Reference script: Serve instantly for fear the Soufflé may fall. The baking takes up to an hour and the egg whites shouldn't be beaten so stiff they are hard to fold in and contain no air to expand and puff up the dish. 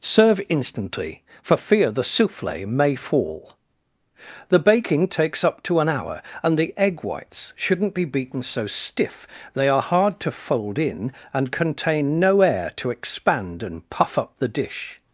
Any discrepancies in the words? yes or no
no